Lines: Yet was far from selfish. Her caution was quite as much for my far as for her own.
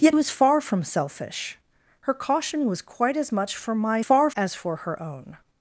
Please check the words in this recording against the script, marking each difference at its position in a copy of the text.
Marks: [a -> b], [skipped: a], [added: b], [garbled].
Yet was far from selfish. Her caution was quite as much for my far as for her own.